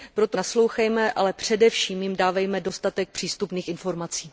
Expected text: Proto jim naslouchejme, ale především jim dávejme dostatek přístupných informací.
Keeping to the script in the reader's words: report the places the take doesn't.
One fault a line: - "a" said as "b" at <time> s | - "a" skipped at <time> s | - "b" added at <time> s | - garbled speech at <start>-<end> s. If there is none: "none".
- "jim" skipped at 0.4 s